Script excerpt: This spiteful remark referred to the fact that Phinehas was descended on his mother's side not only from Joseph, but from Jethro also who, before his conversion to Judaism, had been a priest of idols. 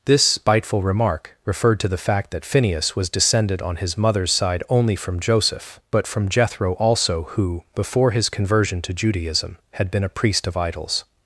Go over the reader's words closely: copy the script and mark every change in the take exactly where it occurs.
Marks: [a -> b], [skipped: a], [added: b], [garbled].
This spiteful remark referred to the fact that Phinehas was descended on his mother's side [skipped: not] only from Joseph, but from Jethro also who, before his conversion to Judaism, had been a priest of idols.